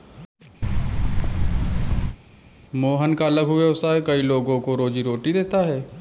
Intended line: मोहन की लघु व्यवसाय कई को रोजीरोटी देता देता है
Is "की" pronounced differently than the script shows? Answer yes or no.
yes